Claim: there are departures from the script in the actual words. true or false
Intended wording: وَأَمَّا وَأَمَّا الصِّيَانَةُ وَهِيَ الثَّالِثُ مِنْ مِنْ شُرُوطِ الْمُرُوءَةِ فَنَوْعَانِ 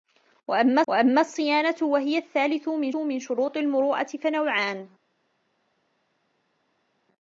false